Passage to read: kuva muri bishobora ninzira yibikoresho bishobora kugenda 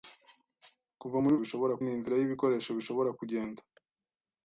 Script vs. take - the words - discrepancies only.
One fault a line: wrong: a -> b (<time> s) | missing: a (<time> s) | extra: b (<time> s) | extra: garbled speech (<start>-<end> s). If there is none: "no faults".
no faults